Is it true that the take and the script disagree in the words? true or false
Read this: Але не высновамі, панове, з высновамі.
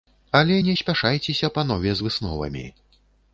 true